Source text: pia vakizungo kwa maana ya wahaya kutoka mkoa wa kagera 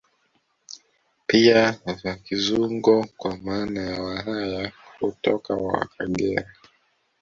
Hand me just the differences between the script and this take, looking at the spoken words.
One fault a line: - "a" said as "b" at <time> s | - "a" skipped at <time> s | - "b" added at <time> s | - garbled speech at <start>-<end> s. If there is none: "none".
- "mkoa" skipped at 5.6 s